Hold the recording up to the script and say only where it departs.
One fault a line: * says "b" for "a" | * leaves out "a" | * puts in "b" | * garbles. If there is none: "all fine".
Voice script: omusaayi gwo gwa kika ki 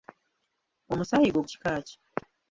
* leaves out "gwa"